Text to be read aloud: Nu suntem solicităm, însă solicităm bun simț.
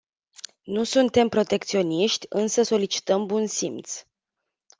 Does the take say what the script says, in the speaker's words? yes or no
no